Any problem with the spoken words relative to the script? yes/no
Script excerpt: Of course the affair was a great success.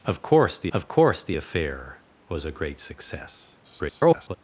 yes